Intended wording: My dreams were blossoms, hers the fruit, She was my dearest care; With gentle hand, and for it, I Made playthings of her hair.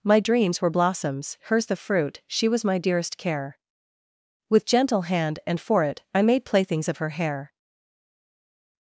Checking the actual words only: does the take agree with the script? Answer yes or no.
yes